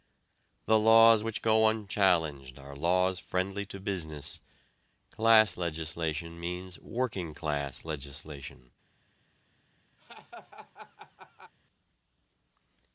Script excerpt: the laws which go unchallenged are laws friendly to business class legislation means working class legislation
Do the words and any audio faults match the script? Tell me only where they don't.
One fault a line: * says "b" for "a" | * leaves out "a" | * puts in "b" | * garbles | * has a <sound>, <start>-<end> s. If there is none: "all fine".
* has a laugh, 10.0-11.5 s